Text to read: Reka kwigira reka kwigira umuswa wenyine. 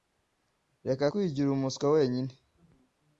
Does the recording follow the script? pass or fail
fail